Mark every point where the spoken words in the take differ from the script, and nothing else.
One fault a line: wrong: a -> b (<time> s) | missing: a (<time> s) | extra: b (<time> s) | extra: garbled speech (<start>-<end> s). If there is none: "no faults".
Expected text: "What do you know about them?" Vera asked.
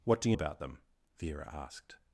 missing: know (0.4 s)